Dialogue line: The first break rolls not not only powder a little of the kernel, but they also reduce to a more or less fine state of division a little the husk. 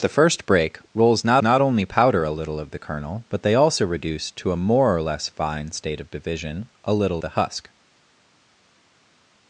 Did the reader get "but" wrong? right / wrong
right